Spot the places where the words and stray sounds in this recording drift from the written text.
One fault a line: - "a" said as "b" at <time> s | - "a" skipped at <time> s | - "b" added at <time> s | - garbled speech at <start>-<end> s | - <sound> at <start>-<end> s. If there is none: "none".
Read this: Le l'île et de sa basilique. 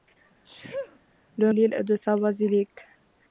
- sneeze at 0.4-1.0 s